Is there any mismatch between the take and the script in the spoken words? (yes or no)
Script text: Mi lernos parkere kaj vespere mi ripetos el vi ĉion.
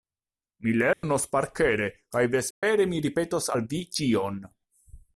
yes